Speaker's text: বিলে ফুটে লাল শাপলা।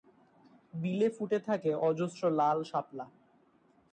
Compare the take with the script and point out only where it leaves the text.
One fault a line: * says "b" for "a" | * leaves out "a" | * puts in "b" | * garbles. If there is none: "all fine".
* puts in "থাকে অজস্র"